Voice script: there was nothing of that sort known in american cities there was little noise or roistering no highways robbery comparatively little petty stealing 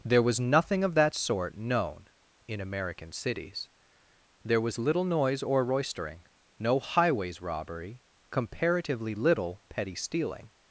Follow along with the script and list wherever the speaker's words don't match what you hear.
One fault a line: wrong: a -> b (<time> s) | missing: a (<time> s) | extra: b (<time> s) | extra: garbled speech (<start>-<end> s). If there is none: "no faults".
no faults